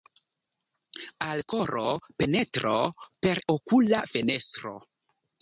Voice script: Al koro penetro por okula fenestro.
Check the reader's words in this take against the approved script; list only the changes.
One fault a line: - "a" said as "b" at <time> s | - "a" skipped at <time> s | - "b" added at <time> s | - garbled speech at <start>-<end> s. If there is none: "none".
- "por" said as "per" at 3.3 s